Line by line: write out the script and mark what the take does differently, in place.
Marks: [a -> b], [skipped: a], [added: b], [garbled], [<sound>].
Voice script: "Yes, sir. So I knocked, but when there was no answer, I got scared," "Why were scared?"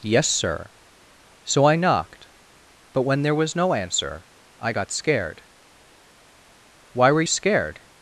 "Yes, sir. So I knocked, but when there was no answer, I got scared," "Why were scared?"